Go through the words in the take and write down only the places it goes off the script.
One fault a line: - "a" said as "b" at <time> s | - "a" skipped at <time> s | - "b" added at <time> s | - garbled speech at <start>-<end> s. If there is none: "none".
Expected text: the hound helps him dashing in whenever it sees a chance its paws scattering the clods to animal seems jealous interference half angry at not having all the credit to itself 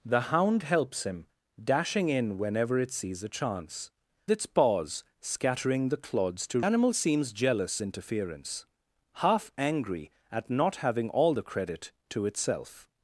none